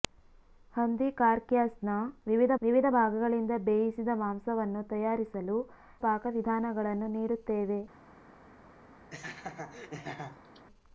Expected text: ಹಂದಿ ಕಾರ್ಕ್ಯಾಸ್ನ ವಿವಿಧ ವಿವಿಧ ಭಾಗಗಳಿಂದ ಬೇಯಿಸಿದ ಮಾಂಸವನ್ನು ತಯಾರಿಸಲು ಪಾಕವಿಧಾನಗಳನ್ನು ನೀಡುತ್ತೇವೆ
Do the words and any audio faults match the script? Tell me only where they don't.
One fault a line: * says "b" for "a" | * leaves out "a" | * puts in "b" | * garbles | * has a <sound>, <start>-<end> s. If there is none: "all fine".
* has a laugh, 9.1-10.7 s